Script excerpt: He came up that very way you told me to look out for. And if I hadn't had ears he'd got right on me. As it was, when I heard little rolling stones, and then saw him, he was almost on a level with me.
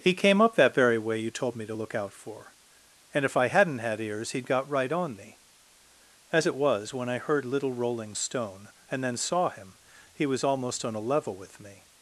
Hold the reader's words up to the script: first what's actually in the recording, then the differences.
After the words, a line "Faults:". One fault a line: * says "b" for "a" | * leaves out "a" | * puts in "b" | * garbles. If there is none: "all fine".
He came up that very way you told me to look out for. And if I hadn't had ears he'd got right on me. As it was, when I heard little rolling stone, and then saw him, he was almost on a level with me.
Faults:
* says "stone" for "stones"